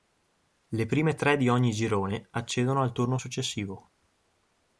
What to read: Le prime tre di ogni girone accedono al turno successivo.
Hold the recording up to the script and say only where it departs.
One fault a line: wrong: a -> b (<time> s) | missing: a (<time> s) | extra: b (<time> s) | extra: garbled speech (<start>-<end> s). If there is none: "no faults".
no faults